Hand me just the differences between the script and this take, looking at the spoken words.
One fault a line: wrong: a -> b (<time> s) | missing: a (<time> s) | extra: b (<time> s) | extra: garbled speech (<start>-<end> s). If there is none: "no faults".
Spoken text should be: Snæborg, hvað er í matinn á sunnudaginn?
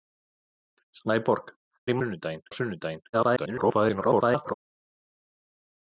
missing: hvað (1.5 s)
wrong: matinn -> sunnudaginn (2.0 s)
extra: garbled speech (3.1-4.5 s)